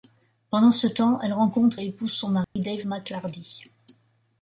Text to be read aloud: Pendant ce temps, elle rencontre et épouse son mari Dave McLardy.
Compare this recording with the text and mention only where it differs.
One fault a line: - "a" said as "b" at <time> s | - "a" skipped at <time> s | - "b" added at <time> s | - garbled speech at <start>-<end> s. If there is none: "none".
none